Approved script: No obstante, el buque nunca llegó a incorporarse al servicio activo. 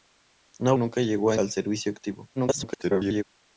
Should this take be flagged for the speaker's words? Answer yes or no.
yes